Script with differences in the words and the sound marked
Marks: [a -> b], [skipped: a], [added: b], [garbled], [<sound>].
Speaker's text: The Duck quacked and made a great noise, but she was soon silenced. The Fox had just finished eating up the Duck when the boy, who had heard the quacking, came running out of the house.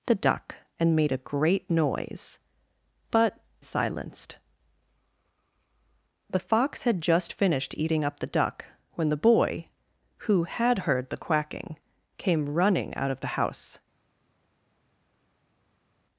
The Duck [skipped: quacked] and made a great noise, but [skipped: she was soon] silenced. The Fox had just finished eating up the Duck when the boy, who had heard the quacking, came running out of the house.